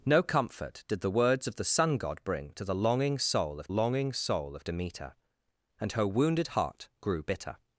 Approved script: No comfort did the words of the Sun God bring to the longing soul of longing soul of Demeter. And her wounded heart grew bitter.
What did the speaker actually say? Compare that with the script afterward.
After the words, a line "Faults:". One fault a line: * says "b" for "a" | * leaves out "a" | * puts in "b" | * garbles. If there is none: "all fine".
No comfort did the words of the Sun God bring to the longing soul of longing soul of Demeter. And her wounded heart grew bitter.
Faults:
all fine